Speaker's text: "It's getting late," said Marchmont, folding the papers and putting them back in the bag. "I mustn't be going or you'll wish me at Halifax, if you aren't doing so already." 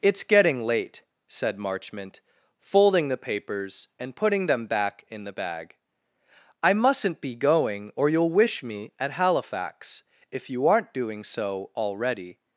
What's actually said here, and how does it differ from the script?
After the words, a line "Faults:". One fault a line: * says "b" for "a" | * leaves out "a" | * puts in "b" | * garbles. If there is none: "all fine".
"It's getting late," said Marchmont, folding the papers and putting them back in the bag. "I mustn't be going or you'll wish me at Halifax, if you aren't doing so already."
Faults:
all fine